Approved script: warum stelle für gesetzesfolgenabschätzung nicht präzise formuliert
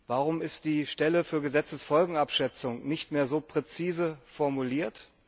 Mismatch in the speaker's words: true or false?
true